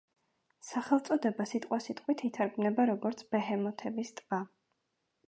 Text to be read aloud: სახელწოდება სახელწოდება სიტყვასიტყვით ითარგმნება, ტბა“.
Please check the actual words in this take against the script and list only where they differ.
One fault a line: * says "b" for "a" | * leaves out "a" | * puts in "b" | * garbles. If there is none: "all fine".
* leaves out "სახელწოდება"
* puts in "როგორც ბეჰემოთების"